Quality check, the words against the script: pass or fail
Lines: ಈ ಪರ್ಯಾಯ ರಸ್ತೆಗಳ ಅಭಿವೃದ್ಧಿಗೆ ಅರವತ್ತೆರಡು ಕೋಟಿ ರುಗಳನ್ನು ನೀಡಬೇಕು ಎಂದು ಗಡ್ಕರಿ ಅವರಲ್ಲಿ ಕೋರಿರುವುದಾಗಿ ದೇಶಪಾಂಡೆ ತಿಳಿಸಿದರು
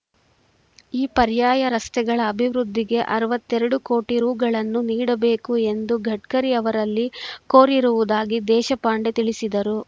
pass